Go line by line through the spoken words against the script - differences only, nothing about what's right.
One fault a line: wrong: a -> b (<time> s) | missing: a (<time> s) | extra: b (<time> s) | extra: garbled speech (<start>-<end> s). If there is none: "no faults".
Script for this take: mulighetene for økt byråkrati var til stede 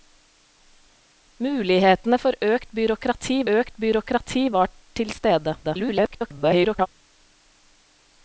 extra: økt byråkrati (3.5 s)
extra: garbled speech (5.6-6.9 s)